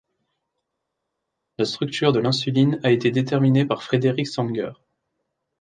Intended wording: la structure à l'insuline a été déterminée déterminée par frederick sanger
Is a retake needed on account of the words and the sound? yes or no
yes